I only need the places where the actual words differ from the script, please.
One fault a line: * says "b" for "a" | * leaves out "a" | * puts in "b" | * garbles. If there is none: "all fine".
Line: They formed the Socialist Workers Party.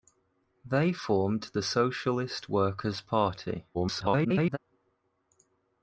* garbles